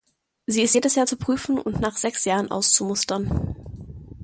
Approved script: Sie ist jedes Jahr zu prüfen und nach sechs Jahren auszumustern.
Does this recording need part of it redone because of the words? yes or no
no